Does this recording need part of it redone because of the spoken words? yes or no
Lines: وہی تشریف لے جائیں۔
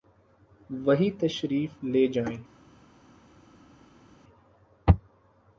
no